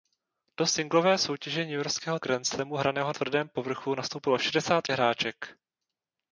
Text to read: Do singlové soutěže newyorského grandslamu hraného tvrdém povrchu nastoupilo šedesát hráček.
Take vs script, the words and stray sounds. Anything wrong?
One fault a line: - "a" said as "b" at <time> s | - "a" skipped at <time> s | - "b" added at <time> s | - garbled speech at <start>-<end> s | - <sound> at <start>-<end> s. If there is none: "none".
none